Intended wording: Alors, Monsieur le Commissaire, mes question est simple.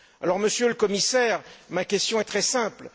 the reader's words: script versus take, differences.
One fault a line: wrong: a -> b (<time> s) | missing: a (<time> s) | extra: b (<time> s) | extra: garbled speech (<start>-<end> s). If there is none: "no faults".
wrong: mes -> ma (1.7 s)
extra: très (2.2 s)